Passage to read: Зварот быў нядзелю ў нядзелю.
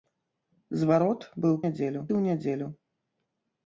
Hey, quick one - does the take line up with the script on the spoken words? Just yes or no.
yes